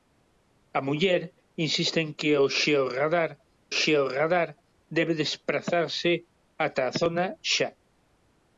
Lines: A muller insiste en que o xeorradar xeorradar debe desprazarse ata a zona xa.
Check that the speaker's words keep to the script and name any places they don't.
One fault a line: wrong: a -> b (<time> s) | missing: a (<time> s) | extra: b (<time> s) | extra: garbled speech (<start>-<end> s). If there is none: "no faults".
no faults